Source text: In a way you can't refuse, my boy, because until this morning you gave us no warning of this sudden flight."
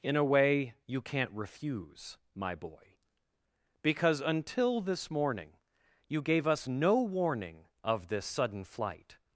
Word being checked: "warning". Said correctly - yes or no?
yes